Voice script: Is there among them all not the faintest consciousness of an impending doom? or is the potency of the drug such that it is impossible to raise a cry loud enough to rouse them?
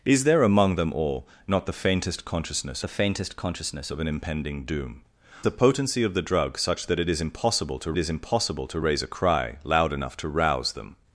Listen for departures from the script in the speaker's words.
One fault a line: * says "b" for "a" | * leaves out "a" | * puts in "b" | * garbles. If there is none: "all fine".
* puts in "the faintest consciousness"
* leaves out "or is"
* puts in "is impossible to"